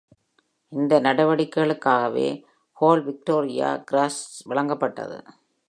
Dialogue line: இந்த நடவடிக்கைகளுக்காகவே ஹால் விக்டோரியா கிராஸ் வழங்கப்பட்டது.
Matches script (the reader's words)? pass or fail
pass